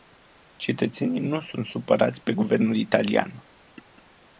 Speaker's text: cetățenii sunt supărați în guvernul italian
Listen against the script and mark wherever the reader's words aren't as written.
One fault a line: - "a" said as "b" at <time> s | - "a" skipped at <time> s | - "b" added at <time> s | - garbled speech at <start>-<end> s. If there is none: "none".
- "nu" added at 1.2 s
- "în" said as "pe" at 2.2 s